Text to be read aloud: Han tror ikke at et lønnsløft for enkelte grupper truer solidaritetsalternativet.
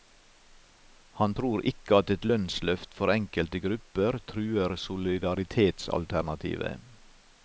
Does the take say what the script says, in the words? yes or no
yes